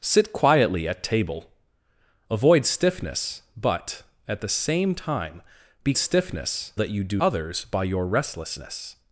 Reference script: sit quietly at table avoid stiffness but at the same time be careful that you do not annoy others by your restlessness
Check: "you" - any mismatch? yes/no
no